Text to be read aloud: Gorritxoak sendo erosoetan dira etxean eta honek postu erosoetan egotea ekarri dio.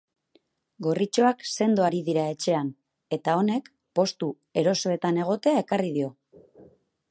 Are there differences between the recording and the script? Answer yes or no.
yes